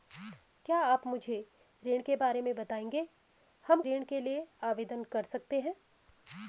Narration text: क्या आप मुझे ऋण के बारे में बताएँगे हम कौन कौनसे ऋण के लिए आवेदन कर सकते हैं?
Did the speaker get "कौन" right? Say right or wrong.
wrong